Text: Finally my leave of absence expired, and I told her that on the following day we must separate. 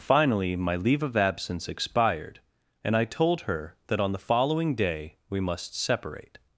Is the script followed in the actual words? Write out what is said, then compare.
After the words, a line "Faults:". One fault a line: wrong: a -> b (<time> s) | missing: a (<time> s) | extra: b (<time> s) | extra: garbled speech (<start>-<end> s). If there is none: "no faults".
Finally my leave of absence expired, and I told her that on the following day we must separate.
Faults:
no faults